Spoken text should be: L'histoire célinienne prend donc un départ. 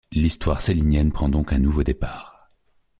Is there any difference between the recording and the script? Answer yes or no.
yes